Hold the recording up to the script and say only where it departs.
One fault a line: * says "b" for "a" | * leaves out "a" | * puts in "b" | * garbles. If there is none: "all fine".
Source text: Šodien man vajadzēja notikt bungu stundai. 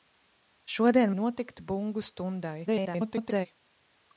* leaves out "man vajadzēja"
* garbles